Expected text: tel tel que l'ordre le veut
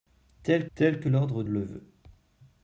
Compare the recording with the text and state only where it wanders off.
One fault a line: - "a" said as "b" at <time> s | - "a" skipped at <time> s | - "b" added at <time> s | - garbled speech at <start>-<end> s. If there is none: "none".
none